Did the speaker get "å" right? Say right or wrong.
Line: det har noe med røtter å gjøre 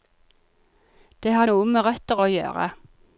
right